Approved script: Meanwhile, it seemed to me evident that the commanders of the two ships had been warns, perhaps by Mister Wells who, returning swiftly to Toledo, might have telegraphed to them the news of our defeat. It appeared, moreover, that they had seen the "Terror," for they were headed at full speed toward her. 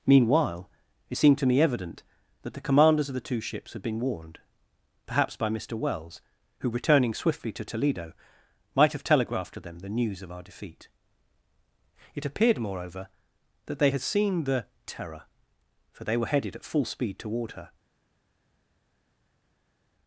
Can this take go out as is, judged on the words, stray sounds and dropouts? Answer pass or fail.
fail